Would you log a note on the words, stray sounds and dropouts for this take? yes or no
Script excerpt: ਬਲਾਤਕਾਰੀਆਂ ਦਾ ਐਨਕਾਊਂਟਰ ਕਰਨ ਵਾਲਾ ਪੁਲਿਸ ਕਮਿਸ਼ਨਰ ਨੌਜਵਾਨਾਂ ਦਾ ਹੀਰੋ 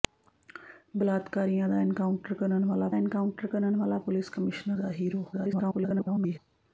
yes